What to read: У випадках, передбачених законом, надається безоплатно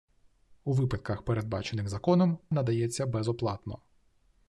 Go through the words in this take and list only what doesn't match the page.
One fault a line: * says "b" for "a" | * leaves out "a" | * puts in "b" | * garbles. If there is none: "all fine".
all fine